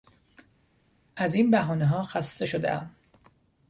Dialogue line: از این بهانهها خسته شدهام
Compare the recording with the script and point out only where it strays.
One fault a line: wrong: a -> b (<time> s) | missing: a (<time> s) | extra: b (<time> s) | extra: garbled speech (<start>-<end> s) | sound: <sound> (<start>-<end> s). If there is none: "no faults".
no faults